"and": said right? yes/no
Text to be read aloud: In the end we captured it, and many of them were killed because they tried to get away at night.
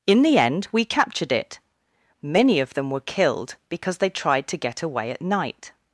no